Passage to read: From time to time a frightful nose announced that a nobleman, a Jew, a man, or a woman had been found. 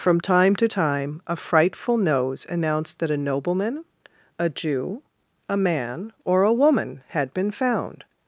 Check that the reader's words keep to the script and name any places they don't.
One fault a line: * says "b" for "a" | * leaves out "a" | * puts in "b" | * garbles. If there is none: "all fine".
all fine